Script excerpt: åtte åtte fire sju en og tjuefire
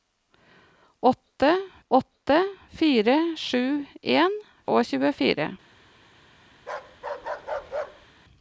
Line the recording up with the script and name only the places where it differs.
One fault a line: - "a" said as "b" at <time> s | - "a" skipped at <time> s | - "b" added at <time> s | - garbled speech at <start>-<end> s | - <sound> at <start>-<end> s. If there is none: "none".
- bark at 6.6-8.1 s